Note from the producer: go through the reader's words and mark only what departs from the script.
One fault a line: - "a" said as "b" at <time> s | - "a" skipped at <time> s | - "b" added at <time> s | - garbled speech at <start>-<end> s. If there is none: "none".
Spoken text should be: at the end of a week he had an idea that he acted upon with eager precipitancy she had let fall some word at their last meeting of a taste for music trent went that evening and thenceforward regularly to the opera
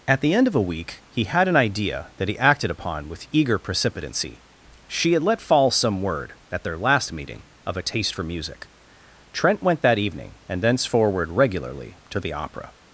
none